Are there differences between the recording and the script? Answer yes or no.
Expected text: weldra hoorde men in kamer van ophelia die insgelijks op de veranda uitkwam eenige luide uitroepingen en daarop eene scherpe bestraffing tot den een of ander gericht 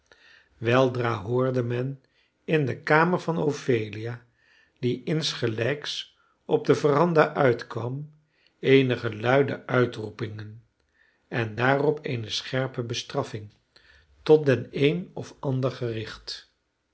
yes